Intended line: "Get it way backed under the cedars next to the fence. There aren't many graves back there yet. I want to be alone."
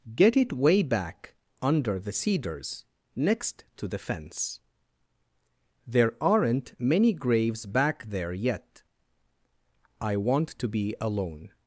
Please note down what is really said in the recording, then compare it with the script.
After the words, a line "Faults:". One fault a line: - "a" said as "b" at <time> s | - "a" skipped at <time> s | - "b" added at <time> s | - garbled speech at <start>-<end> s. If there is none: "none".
"Get it way back under the cedars next to the fence. There aren't many graves back there yet. I want to be alone."
Faults:
- "backed" said as "back" at 0.8 s